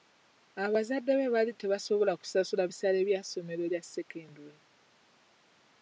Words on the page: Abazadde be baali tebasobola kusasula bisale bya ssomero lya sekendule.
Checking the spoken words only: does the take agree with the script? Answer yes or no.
yes